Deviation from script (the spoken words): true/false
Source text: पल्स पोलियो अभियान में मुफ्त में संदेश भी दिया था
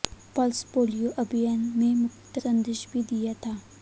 true